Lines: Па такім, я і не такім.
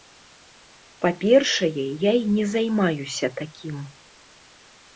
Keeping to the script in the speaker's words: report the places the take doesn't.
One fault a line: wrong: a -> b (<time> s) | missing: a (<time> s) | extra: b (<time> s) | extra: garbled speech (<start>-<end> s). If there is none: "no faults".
wrong: такім -> першае (1.2 s)
extra: займаюся (2.5 s)